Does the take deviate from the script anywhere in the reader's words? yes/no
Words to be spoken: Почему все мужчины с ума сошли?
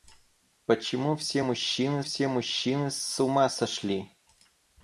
yes